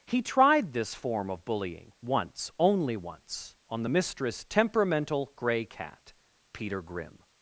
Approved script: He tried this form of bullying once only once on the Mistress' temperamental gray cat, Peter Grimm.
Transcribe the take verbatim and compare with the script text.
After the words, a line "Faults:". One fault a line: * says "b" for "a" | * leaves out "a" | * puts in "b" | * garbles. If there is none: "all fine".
He tried this form of bullying once only once on the Mistress' temperamental gray cat, Peter Grimm.
Faults:
all fine